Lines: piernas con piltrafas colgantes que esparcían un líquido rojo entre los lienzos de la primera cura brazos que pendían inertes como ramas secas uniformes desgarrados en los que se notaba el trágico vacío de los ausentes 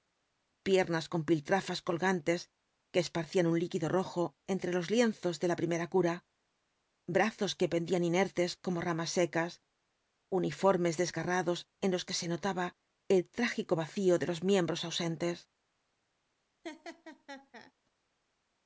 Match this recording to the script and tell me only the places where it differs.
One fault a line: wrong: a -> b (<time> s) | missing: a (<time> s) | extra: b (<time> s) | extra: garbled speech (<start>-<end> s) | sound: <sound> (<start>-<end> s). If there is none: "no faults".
extra: miembros (14.5 s)
sound: laugh (16.6-17.7 s)